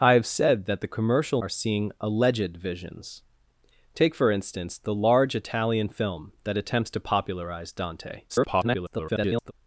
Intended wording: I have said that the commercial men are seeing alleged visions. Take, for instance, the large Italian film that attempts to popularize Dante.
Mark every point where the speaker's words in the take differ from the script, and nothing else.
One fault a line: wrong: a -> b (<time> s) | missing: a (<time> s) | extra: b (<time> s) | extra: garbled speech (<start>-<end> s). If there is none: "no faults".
missing: men (1.4 s)
extra: garbled speech (8.3-9.5 s)